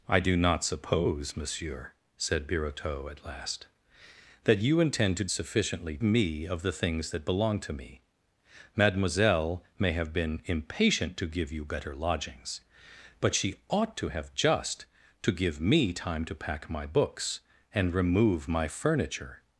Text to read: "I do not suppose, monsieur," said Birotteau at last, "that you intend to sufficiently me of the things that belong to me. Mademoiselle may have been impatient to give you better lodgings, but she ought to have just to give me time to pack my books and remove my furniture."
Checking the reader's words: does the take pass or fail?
pass